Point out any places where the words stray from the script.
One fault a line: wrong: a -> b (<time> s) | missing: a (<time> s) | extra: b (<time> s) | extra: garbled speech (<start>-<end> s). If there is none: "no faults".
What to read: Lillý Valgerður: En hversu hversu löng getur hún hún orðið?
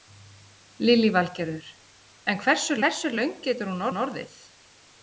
no faults